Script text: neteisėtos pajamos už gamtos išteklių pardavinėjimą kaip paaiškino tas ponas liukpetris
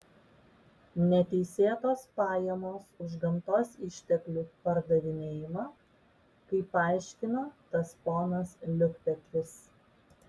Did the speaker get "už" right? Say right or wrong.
right